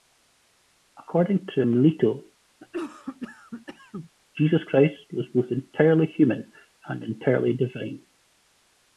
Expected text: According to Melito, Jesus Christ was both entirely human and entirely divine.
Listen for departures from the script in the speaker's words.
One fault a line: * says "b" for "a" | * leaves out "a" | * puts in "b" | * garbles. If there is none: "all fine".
all fine